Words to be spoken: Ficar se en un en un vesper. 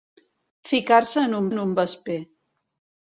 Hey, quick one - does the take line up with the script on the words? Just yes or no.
yes